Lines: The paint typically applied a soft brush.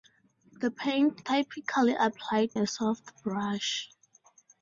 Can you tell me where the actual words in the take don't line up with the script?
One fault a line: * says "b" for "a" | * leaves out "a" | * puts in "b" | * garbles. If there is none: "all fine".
all fine